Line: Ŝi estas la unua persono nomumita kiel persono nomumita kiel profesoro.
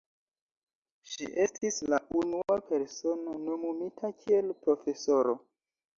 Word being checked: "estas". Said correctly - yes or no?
no